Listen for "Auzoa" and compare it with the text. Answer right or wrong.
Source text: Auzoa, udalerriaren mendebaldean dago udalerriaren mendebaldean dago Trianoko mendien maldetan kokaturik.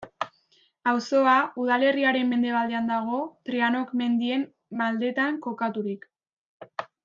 right